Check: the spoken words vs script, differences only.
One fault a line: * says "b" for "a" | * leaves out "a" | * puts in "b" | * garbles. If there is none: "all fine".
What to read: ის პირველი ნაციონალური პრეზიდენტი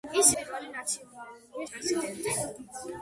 all fine